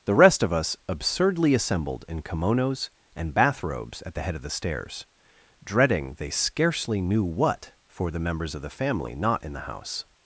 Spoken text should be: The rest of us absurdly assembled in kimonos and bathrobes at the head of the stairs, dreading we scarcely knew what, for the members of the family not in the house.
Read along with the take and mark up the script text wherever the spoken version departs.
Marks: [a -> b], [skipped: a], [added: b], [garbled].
The rest of us absurdly assembled in kimonos and bathrobes at the head of the stairs, dreading [we -> they] scarcely knew what, for the members of the family not in the house.